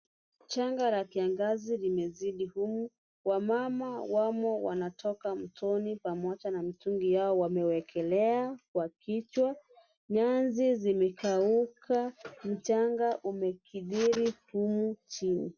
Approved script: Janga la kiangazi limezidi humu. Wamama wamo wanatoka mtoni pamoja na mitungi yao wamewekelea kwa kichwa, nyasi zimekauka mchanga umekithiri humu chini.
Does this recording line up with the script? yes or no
yes